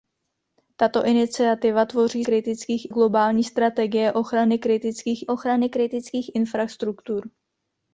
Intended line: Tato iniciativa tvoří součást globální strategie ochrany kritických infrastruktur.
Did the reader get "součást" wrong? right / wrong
wrong